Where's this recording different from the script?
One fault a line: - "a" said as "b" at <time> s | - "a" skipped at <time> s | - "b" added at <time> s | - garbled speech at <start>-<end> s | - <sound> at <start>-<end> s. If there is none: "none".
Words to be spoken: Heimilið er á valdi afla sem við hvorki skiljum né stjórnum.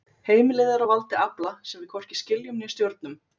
none